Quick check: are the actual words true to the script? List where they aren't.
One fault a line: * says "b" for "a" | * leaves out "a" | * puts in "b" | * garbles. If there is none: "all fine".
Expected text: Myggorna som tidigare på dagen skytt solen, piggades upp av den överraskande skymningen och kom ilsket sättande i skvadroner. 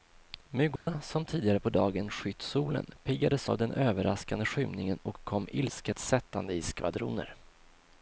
* leaves out "upp"